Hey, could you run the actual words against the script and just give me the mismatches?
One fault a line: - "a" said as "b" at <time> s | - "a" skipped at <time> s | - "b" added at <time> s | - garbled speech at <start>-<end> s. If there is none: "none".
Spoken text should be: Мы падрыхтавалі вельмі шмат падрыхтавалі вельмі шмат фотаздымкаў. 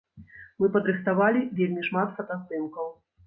- "падрыхтавалі вельмі шмат" skipped at 2.1 s